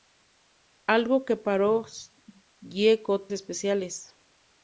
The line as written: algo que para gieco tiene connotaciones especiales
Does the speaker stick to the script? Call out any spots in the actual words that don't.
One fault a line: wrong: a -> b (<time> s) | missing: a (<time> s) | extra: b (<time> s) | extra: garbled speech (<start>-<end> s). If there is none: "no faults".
missing: tiene connotaciones (3.3 s)